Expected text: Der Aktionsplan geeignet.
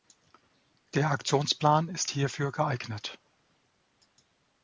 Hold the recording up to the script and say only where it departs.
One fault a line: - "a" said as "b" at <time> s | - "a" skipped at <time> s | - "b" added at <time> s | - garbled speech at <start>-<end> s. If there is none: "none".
- "ist hierfür" added at 1.9 s